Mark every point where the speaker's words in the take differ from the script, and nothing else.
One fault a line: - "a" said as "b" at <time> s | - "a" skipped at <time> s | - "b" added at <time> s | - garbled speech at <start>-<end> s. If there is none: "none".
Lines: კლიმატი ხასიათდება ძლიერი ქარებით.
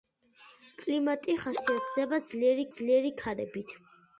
- "ძლიერი" added at 2.8 s